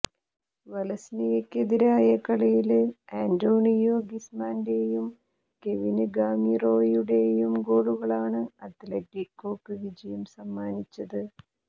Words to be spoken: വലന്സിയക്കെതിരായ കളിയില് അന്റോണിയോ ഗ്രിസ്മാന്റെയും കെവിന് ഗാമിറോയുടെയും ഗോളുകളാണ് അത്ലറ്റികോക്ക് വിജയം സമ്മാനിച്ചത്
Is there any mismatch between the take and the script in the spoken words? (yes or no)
no